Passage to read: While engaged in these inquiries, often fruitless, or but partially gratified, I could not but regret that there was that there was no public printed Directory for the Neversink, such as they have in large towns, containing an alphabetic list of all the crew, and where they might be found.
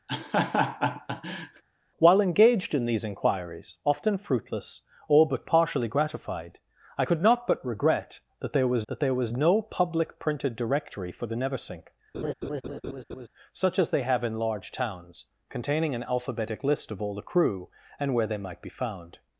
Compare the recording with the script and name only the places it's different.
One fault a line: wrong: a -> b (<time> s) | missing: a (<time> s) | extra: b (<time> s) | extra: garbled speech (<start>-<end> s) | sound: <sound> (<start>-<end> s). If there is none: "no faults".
sound: laugh (0.1-1.6 s)
sound: laugh (12.1-13.3 s)